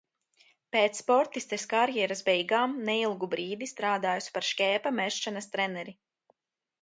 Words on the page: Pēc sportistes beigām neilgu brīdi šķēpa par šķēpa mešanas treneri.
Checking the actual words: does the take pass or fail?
fail